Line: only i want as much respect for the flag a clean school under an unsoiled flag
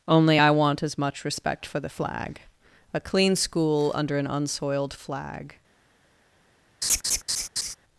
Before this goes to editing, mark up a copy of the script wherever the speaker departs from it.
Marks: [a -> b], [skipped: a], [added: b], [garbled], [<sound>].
only i want as much respect for the flag a clean school under an unsoiled flag [laugh]